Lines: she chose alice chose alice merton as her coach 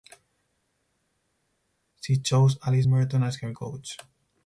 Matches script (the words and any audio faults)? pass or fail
fail